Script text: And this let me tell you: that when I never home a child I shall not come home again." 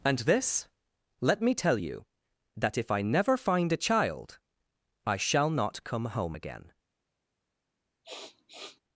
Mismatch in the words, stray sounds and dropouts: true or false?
true